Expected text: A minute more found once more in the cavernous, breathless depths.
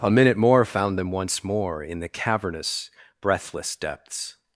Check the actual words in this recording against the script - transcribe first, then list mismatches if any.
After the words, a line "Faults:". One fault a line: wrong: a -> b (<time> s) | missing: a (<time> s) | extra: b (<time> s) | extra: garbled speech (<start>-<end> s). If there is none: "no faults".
A minute more found them once more in the cavernous, breathless depths.
Faults:
extra: them (1.0 s)